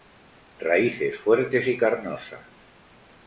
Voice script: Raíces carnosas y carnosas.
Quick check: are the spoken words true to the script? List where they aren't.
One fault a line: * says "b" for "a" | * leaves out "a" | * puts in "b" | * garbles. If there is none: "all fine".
* says "fuertes" for "carnosas"